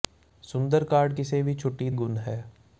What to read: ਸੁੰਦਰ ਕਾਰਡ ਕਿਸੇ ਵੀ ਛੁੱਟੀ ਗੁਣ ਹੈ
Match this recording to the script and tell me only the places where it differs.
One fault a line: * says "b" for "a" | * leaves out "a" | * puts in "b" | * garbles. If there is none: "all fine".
all fine